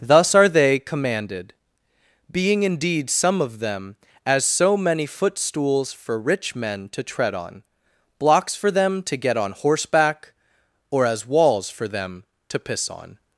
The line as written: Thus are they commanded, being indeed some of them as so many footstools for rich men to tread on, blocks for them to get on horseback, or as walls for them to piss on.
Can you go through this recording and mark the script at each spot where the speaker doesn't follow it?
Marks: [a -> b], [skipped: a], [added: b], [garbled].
Thus are they commanded, being indeed some of them as so many footstools for rich men to tread on, blocks for them to get on horseback, or as walls for them to piss on.